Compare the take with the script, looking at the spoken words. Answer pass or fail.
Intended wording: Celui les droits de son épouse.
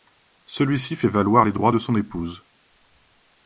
fail